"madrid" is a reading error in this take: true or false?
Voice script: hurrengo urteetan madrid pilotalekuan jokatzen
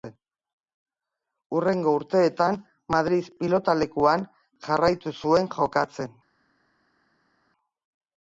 false